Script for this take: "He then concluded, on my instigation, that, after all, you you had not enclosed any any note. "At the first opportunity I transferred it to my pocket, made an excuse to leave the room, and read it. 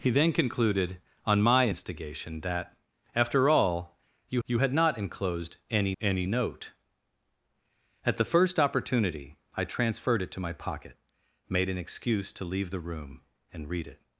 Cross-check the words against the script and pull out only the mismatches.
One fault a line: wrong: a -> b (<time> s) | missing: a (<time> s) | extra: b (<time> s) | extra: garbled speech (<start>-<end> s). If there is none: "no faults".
no faults